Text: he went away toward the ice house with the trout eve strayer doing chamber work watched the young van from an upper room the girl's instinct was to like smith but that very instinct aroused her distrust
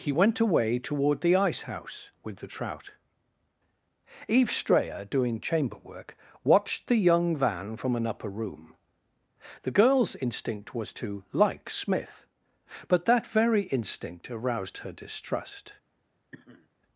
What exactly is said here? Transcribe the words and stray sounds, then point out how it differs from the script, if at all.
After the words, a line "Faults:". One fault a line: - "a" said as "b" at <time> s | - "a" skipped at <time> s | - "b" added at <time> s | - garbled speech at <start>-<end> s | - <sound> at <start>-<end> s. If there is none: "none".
he went away toward the ice house with the trout eve strayer doing chamber work watched the young van from an upper room the girl's instinct was to like smith but that very instinct aroused her distrust
Faults:
- sniff at 16.3-16.7 s